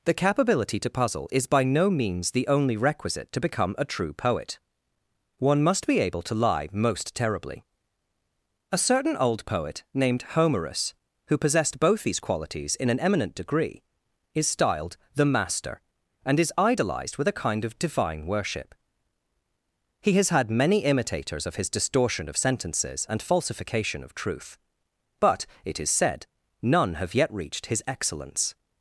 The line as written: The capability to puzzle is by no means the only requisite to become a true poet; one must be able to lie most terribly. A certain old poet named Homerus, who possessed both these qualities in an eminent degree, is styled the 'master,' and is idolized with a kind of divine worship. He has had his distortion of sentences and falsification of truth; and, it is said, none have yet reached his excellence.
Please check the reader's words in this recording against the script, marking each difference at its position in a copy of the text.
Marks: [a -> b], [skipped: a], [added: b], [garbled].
The capability to puzzle is by no means the only requisite to become a true poet; one must be able to lie most terribly. A certain old poet named Homerus, who possessed both these qualities in an eminent degree, is styled the 'master,' and is idolized with a kind of divine worship. He has had [added: many imitators of] his distortion of sentences and falsification of truth; [and, -> but] it is said, none have yet reached his excellence.